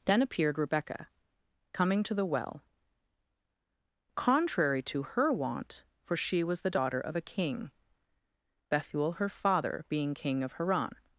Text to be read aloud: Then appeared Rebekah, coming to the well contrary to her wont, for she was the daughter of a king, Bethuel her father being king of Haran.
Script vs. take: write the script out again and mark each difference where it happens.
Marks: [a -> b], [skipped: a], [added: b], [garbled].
Then appeared Rebekah, coming to the well contrary to her wont, for she was the daughter of a king, Bethuel her father being king of Haran.